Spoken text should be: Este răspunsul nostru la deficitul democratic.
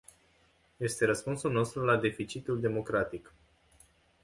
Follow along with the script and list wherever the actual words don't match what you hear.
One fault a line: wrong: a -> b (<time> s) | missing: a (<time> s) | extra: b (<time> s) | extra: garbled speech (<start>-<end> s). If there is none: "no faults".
no faults